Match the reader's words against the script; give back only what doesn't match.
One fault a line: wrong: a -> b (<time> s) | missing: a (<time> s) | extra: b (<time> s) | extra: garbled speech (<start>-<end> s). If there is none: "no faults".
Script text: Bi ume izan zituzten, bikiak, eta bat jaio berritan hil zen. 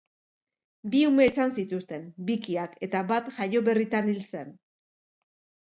no faults